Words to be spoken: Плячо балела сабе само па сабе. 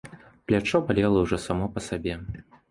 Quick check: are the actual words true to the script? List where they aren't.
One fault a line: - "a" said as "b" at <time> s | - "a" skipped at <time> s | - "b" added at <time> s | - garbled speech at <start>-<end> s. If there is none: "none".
- "сабе" said as "ўжо" at 1.3 s